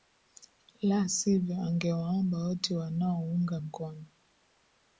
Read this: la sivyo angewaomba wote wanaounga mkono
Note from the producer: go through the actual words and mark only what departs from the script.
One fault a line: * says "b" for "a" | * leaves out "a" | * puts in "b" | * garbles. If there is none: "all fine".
all fine